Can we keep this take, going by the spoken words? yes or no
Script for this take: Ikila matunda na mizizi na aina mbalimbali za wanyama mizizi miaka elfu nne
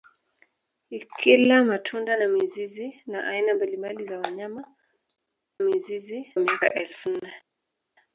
yes